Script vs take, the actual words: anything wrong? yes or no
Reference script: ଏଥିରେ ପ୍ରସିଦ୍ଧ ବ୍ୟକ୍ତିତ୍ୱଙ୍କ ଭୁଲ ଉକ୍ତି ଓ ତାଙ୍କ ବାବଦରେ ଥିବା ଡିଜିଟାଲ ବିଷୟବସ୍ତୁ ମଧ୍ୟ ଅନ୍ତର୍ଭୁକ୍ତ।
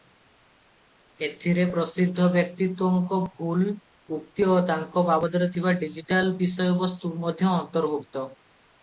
no